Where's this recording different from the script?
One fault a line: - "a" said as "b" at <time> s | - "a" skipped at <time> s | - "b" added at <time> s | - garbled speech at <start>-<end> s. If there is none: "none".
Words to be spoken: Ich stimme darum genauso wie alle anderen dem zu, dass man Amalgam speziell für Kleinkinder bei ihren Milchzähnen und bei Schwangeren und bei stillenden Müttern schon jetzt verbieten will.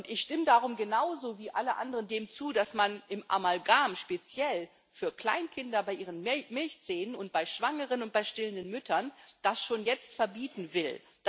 none